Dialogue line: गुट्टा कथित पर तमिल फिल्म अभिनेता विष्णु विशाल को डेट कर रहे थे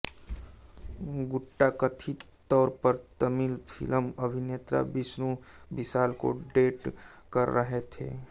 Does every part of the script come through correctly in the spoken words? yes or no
no